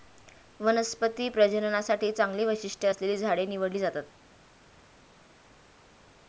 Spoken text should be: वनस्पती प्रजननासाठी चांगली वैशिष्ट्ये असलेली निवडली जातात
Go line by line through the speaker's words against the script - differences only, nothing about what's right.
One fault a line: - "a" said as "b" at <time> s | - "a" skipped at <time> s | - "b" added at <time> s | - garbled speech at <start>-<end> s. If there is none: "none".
- "झाडे" added at 3.2 s